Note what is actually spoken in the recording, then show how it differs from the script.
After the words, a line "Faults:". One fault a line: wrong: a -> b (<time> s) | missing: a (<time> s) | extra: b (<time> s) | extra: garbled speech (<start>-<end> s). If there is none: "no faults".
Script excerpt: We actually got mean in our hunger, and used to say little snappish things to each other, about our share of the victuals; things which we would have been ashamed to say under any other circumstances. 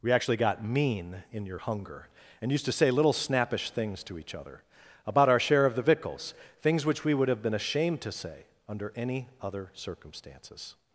We actually got mean in your hunger, and used to say little snappish things to each other, about our share of the victuals; things which we would have been ashamed to say under any other circumstances.
Faults:
wrong: our -> your (1.5 s)